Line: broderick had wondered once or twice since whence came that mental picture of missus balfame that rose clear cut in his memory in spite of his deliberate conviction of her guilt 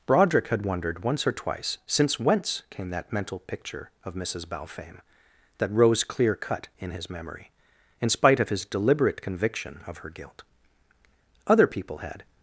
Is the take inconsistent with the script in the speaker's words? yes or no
yes